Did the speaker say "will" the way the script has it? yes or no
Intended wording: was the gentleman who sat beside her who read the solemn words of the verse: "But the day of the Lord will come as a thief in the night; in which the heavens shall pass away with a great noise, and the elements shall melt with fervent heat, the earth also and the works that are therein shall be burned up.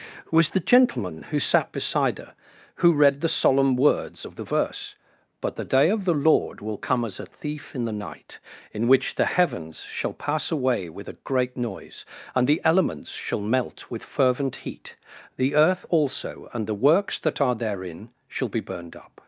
yes